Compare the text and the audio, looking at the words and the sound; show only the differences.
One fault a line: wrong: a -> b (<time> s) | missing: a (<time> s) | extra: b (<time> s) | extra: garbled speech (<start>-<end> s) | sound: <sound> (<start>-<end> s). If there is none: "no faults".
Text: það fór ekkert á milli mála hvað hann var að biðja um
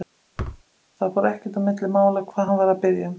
sound: thud (0.4-0.6 s)